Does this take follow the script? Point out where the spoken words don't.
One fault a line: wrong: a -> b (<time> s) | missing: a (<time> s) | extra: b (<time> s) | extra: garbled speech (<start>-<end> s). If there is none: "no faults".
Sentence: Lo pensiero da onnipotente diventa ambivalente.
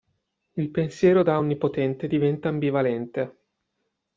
wrong: Lo -> Il (0.5 s)